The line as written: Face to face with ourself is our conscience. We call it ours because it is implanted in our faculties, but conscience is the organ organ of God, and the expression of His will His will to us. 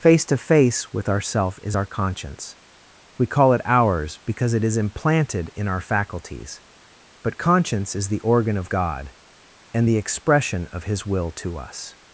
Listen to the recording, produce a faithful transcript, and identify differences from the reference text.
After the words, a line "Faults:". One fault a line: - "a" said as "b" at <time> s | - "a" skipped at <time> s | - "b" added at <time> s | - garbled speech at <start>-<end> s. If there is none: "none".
Face to face with ourself is our conscience. We call it ours because it is implanted in our faculties, but conscience is the organ of God, and the expression of His will to us.
Faults:
- "organ" skipped at 8.6 s
- "His will" skipped at 11.3 s